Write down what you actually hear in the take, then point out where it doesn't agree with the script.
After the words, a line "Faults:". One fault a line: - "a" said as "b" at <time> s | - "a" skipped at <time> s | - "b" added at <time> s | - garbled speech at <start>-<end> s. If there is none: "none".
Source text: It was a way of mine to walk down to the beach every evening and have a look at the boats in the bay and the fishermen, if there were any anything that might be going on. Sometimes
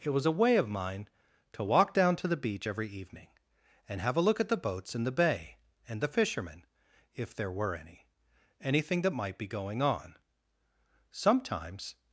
It was a way of mine to walk down to the beach every evening and have a look at the boats in the bay and the fishermen, if there were any anything that might be going on. Sometimes
Faults:
none